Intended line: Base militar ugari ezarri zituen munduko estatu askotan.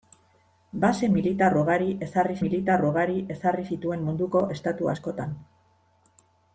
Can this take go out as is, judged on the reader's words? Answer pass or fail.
fail